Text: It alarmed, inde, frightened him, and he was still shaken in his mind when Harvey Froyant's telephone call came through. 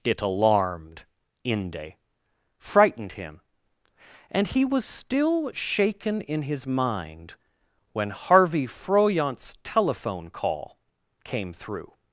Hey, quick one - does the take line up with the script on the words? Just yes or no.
yes